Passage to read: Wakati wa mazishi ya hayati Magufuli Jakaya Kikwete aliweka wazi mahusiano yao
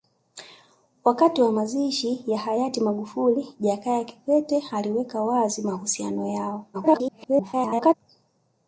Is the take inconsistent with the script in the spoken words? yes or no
yes